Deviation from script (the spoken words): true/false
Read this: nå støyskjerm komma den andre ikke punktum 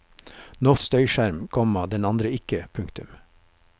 false